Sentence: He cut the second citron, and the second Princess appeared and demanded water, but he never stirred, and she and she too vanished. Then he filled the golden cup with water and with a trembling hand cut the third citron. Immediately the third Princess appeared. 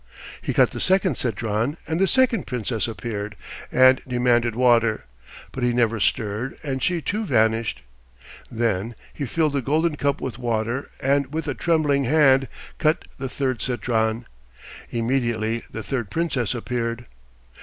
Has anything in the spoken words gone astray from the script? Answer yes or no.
yes